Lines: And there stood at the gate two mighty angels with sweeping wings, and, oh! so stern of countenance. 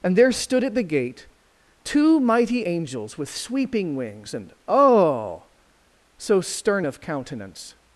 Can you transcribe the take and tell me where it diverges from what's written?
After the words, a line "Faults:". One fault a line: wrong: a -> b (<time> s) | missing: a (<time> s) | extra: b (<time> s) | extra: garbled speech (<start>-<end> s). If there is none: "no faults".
And there stood at the gate two mighty angels with sweeping wings, and, oh! so stern of countenance.
Faults:
no faults